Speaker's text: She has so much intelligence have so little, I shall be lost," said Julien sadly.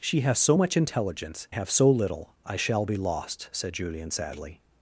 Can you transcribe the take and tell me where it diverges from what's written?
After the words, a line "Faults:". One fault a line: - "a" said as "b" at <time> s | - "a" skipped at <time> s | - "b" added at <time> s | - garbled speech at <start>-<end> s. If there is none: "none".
She has so much intelligence have so little, I shall be lost," said Julien sadly.
Faults:
none